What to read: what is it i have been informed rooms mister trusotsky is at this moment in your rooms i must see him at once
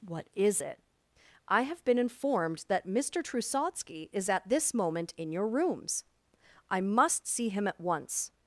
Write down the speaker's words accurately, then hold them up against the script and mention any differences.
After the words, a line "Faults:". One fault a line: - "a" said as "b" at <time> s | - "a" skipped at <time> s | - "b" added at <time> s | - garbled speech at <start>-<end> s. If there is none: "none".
what is it i have been informed that mister trusotsky is at this moment in your rooms i must see him at once
Faults:
- "rooms" said as "that" at 2.7 s